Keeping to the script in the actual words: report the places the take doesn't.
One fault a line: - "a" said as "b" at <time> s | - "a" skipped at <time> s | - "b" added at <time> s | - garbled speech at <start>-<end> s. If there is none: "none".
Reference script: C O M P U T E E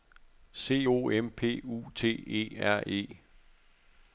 - "R" added at 2.6 s